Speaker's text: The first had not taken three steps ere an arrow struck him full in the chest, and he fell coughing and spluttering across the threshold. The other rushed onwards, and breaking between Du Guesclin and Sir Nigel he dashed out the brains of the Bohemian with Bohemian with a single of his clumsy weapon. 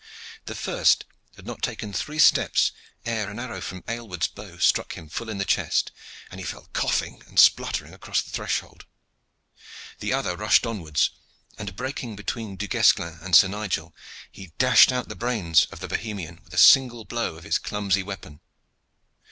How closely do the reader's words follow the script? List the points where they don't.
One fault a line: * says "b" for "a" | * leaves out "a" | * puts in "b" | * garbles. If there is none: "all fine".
* puts in "from Aylward's bow"
* leaves out "Bohemian with"
* puts in "blow"